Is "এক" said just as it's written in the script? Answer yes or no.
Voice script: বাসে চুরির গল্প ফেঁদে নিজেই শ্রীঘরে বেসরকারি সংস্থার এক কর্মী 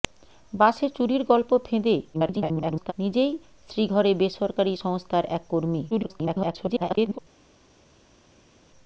yes